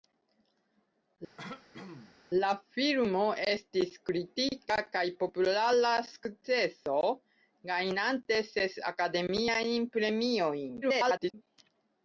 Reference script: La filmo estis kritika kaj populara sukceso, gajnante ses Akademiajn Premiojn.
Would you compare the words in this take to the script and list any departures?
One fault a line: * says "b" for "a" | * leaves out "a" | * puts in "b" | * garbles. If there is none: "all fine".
* garbles